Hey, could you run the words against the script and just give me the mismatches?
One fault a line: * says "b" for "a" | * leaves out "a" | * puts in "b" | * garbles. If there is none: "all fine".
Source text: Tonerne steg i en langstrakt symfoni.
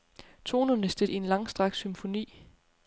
all fine